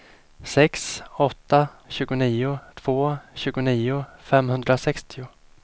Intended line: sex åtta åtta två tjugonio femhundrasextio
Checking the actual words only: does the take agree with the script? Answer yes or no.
no